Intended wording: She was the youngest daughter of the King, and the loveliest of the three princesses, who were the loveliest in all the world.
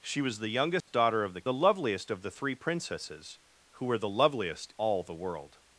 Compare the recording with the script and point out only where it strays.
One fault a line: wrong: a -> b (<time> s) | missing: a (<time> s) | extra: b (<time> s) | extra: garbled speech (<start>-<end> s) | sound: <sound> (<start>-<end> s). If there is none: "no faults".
sound: dropout (0.8-0.9 s)
missing: King and (1.4 s)
missing: in (4.7 s)